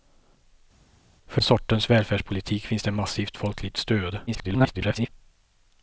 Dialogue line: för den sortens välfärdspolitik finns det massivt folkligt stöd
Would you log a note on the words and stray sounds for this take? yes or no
yes